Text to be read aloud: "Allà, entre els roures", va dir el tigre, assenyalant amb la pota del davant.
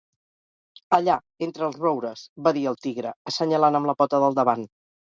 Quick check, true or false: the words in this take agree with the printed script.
true